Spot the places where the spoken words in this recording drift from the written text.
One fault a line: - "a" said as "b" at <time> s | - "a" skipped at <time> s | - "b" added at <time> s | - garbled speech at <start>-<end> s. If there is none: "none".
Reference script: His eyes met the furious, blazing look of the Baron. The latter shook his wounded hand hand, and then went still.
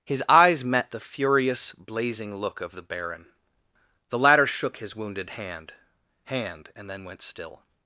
none